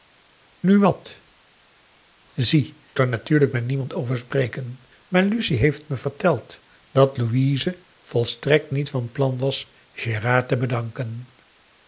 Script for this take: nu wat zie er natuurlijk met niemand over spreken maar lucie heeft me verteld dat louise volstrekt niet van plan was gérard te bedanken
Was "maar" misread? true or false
false